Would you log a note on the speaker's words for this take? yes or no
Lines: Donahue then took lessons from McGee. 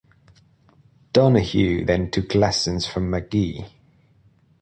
no